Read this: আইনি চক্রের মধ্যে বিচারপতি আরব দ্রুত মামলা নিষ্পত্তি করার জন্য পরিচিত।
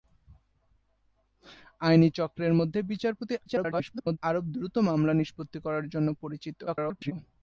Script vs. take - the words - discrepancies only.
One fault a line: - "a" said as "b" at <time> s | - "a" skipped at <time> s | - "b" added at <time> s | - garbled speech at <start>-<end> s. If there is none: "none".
- garbled speech at 3.5-4.2 s
- garbled speech at 6.7-7.1 s